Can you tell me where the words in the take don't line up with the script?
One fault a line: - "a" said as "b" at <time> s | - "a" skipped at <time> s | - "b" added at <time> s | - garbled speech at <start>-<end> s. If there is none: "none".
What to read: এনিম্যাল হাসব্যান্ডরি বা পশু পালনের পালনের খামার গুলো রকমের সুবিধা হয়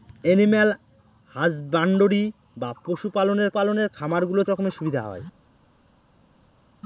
none